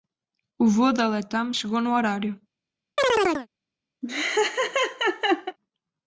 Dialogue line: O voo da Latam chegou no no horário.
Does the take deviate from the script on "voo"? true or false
false